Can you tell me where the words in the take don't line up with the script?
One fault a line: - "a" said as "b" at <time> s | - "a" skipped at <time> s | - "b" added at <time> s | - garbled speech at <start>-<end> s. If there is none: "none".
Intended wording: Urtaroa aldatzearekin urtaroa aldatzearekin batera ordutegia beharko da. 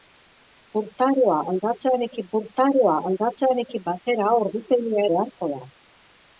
none